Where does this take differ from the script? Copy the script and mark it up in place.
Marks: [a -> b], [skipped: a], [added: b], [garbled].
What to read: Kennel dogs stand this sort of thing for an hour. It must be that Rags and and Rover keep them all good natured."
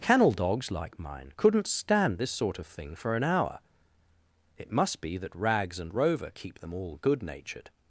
Kennel dogs [added: like mine couldn't] stand this sort of thing for an hour. It must be that Rags and [skipped: and] Rover keep them all good natured."